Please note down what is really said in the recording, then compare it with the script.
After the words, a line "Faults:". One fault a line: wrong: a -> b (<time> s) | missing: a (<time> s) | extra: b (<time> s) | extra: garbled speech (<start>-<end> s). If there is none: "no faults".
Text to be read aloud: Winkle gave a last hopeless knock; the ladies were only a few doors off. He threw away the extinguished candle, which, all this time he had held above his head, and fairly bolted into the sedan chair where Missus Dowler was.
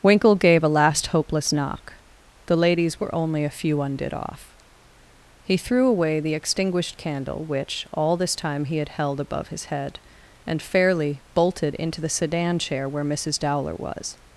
Winkle gave a last hopeless knock; the ladies were only a few undid off. He threw away the extinguished candle, which, all this time he had held above his head, and fairly bolted into the sedan chair where Missus Dowler was.
Faults:
wrong: doors -> undid (3.8 s)